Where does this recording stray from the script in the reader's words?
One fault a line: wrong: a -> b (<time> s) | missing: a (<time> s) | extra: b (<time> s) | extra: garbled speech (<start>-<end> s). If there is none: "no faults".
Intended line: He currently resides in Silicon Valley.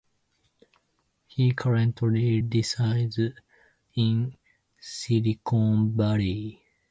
no faults